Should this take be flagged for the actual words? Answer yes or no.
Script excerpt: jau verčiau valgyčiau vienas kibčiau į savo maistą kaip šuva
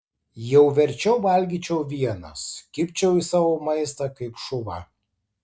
no